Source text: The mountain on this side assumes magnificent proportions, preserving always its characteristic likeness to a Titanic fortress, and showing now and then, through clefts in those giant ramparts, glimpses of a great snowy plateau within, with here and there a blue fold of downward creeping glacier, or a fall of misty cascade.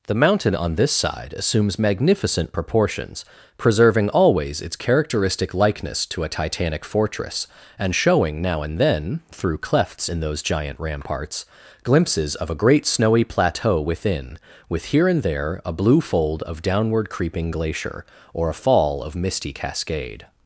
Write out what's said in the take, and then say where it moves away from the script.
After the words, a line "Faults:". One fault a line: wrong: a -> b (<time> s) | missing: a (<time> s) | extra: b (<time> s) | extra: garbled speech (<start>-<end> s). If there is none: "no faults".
The mountain on this side assumes magnificent proportions, preserving always its characteristic likeness to a Titanic fortress, and showing now and then, through clefts in those giant ramparts, glimpses of a great snowy plateau within, with here and there a blue fold of downward creeping glacier, or a fall of misty cascade.
Faults:
no faults